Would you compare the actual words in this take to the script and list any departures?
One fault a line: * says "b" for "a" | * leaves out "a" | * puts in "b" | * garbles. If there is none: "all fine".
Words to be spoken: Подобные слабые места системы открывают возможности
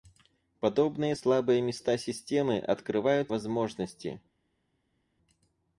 all fine